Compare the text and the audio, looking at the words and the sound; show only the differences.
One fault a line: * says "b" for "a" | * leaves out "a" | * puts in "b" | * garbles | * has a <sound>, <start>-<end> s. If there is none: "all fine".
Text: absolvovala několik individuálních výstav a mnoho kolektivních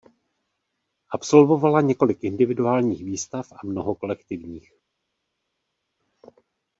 all fine